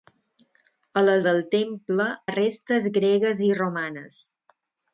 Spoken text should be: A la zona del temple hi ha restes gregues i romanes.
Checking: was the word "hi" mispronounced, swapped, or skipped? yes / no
yes